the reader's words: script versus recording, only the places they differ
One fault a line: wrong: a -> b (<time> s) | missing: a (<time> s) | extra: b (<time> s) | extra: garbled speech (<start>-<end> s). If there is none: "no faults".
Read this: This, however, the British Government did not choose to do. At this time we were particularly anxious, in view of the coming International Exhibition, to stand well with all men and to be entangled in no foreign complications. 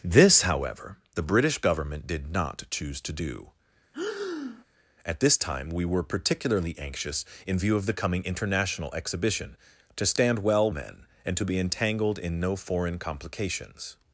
missing: with all (10.7 s)